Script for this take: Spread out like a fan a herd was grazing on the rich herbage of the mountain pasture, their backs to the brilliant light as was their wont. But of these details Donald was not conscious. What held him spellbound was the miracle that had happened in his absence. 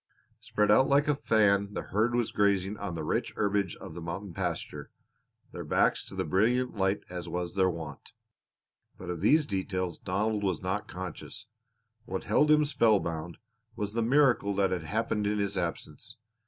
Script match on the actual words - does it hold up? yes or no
no